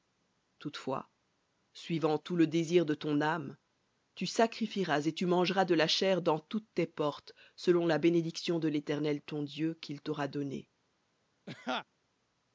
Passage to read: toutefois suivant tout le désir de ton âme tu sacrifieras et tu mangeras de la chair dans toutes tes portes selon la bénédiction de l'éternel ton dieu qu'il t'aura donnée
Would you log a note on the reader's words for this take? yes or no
no